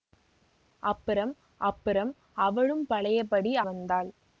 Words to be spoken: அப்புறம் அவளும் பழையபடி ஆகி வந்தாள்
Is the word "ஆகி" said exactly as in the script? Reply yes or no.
no